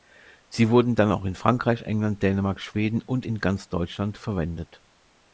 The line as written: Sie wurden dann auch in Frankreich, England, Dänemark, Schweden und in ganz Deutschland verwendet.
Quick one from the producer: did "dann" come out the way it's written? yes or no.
yes